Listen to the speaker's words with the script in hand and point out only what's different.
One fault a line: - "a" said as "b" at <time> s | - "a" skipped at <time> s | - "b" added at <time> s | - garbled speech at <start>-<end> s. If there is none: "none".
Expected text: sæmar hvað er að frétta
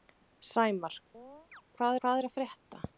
- "hvað" added at 2.0 s